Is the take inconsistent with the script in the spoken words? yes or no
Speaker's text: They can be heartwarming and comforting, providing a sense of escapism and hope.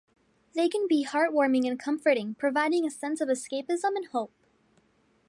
no